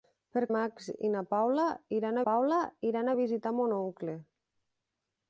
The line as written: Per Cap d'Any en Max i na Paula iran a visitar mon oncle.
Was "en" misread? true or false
true